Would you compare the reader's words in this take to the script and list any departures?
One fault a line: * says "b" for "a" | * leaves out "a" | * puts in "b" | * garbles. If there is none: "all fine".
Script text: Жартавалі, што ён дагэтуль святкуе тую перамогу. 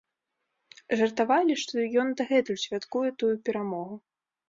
all fine